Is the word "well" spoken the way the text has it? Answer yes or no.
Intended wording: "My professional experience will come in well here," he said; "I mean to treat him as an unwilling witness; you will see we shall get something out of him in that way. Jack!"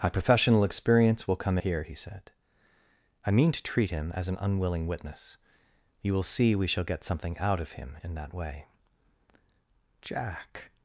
no